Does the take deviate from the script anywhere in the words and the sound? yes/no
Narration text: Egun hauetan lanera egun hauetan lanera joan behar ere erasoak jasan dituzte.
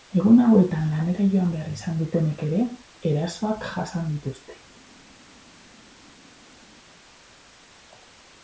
yes